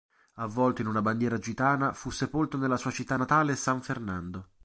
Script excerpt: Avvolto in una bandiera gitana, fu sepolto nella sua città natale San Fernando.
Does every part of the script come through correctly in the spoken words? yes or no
yes